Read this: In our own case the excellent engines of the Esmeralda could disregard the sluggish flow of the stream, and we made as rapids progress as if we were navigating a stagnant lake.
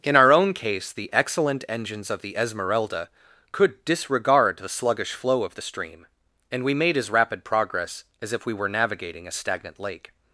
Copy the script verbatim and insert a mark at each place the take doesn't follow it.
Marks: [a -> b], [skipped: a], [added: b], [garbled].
In our own case the excellent engines of the Esmeralda could disregard the sluggish flow of the stream, and we made as [rapids -> rapid] progress as if we were navigating a stagnant lake.